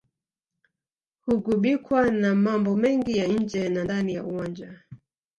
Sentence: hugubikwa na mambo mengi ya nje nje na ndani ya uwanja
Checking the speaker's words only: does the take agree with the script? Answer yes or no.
no